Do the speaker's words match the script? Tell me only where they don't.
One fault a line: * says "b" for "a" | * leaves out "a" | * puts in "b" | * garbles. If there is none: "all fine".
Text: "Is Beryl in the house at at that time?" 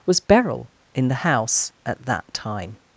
* says "Was" for "Is"
* leaves out "at"